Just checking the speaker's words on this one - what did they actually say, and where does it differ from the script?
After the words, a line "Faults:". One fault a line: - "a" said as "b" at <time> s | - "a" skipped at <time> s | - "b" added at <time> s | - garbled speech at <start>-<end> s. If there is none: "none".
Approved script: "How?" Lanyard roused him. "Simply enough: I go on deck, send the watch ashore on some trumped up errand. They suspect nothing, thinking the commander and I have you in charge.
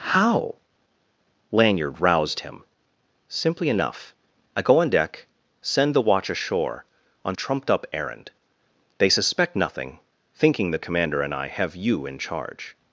"How?" Lanyard roused him. "Simply enough: I go on deck, send the watch ashore on trumped up errand. They suspect nothing, thinking the commander and I have you in charge.
Faults:
- "some" skipped at 7.3 s